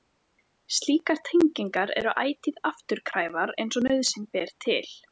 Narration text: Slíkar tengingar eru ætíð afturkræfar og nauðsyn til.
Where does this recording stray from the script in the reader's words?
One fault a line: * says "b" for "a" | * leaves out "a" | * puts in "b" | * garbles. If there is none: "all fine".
* puts in "eins"
* puts in "ber"